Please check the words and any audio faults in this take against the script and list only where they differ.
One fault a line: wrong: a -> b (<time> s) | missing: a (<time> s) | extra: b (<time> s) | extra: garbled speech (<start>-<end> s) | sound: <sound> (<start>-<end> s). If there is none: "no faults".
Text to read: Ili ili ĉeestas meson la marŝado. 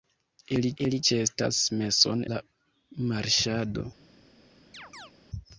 sound: chirp (4.7-5.1 s)